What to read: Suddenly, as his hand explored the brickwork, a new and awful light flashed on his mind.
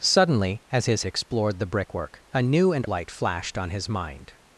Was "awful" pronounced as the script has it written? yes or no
no